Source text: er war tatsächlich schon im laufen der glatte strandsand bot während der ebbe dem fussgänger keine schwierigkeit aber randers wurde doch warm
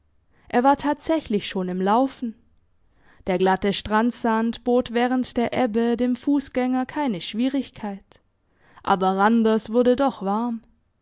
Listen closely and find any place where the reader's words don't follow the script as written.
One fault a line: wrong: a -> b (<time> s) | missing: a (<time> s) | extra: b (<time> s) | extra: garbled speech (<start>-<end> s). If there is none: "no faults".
no faults